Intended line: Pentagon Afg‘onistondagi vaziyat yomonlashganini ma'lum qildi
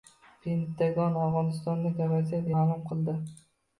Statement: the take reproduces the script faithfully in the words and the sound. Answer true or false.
false